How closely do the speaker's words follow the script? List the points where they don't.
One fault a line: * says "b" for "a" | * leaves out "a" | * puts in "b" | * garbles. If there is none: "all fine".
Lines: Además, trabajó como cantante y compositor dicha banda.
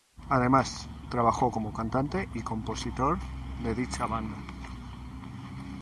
* puts in "de"